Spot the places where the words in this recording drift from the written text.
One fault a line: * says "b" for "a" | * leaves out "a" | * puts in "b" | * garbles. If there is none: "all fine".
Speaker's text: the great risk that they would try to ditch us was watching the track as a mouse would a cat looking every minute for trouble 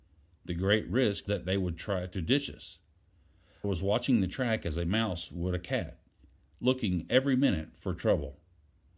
all fine